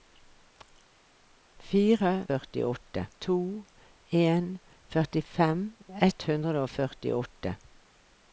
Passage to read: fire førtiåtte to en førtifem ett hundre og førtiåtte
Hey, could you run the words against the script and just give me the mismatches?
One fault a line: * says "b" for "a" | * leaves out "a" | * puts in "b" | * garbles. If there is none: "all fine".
all fine